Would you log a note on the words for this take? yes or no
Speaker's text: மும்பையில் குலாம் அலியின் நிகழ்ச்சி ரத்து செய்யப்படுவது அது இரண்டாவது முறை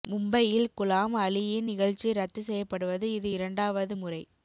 yes